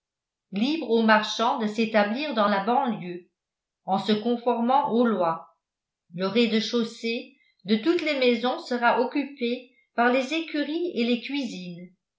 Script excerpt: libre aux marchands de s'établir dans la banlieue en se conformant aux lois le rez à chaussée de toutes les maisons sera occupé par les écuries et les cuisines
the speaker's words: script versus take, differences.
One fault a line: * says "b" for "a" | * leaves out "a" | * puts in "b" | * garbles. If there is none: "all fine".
* says "de" for "à"